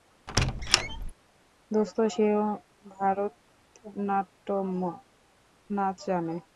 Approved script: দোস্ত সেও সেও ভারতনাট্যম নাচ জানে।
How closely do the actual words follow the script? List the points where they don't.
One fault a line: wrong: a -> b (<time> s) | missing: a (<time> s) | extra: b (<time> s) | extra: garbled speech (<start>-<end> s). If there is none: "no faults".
missing: সেও (2.4 s)